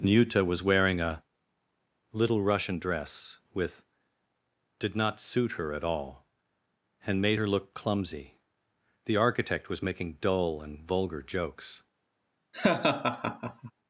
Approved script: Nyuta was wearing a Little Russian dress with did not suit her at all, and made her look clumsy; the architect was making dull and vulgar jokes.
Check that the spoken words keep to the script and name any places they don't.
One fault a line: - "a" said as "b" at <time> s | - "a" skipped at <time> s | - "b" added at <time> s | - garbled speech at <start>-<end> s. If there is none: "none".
none